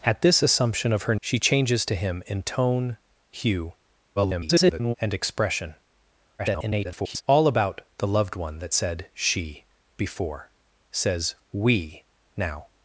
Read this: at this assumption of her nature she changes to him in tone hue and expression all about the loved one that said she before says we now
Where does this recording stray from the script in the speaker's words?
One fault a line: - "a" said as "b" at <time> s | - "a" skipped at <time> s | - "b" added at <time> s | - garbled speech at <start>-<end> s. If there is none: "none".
- "nature" skipped at 1.1 s
- garbled speech at 4.2-4.9 s
- garbled speech at 6.4-7.2 s